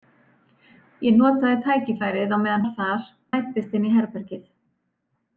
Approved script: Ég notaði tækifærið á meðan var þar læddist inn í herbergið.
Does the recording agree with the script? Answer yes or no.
yes